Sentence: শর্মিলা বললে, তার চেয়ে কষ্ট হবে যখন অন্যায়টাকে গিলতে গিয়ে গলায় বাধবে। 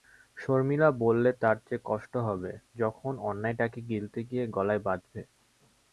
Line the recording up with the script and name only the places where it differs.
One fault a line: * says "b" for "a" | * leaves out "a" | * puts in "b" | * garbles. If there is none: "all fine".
all fine